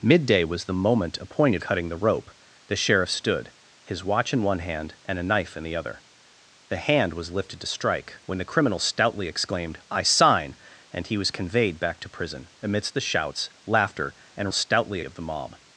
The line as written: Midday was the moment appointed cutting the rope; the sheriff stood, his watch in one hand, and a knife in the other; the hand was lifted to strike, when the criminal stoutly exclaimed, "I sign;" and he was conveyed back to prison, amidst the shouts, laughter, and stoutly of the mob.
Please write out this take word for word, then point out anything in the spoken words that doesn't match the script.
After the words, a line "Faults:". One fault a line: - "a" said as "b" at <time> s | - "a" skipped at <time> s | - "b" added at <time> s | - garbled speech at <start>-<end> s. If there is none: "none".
Midday was the moment appointed cutting the rope; the sheriff stood, his watch in one hand, and a knife in the other; the hand was lifted to strike, when the criminal stoutly exclaimed, "I sign;" and he was conveyed back to prison, amidst the shouts, laughter, and stoutly of the mob.
Faults:
none